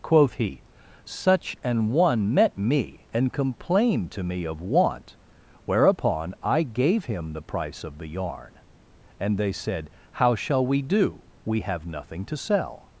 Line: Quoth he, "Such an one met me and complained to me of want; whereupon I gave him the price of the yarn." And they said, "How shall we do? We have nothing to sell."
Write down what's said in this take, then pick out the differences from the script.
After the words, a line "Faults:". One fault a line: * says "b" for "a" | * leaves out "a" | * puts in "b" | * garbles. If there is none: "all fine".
Quoth he, "Such an one met me and complained to me of want; whereupon I gave him the price of the yarn." And they said, "How shall we do? We have nothing to sell."
Faults:
all fine